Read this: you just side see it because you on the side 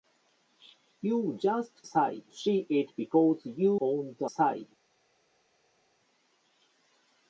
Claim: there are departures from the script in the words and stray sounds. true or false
false